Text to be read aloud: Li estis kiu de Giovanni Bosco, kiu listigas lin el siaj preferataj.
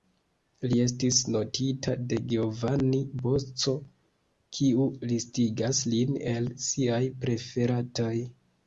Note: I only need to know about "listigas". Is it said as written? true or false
true